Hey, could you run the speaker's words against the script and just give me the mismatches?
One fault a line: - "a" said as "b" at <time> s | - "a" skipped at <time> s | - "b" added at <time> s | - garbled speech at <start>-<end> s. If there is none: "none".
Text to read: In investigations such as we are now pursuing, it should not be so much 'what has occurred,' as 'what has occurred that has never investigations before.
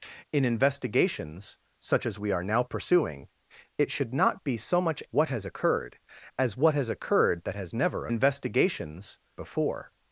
none